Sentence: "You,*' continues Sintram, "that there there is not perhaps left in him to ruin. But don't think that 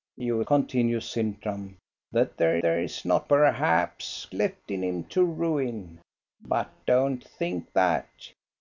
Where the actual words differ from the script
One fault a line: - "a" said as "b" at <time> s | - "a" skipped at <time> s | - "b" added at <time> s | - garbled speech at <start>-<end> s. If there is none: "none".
none